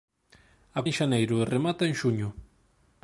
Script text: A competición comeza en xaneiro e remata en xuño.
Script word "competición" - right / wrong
wrong